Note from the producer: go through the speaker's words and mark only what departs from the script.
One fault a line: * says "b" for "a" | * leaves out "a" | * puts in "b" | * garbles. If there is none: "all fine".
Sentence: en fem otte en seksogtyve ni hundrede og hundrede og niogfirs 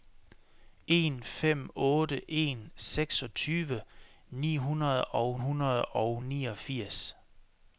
all fine